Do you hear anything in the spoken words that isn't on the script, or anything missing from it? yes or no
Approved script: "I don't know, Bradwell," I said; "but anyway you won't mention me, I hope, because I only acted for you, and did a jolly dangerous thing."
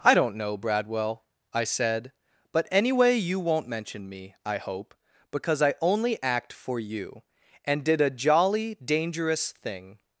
yes